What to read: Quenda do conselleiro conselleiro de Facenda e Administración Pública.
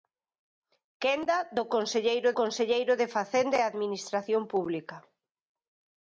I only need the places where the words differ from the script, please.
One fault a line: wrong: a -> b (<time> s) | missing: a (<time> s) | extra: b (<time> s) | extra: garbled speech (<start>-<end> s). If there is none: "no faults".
no faults